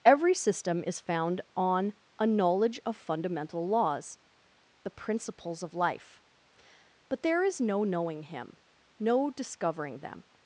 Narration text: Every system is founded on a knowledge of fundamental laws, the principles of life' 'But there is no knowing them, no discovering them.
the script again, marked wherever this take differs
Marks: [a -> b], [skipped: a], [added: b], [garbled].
Every system is [founded -> found] on a knowledge of fundamental laws, the principles of life' 'But there is no knowing [them, -> him] no discovering them.